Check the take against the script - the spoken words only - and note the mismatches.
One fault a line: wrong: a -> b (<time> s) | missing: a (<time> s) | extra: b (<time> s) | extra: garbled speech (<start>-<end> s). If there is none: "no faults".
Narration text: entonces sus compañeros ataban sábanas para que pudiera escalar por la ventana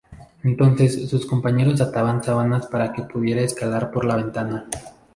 no faults